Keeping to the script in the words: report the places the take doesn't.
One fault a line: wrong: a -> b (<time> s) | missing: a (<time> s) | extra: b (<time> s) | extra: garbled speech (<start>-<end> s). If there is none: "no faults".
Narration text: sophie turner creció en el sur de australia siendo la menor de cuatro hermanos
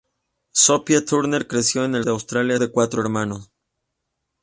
missing: sur (2.0 s)
missing: siendo la menor (2.6 s)